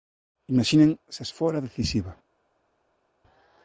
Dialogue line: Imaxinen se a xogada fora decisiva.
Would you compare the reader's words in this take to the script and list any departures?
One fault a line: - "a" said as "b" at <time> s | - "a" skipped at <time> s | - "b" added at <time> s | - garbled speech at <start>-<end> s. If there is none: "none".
- "xogada" skipped at 1.3 s